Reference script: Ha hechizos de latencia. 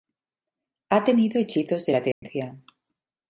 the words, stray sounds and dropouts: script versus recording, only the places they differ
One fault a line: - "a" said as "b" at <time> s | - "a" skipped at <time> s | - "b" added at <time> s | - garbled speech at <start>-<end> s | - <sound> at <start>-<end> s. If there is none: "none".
- "tenido" added at 1.0 s
- dropout at 2.1-2.2 s